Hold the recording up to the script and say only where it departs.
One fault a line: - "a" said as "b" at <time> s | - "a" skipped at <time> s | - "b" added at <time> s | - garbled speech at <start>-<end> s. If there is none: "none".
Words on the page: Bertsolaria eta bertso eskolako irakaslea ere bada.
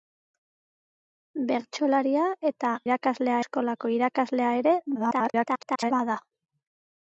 - "bertso" said as "irakaslea" at 2.9 s
- garbled speech at 4.9-5.9 s